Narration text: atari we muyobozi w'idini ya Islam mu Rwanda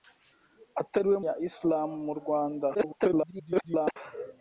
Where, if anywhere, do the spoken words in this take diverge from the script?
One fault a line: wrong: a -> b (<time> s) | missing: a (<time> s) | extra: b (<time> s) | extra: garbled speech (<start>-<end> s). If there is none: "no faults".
missing: muyobozi w'idini (1.2 s)
extra: garbled speech (2.7-4.0 s)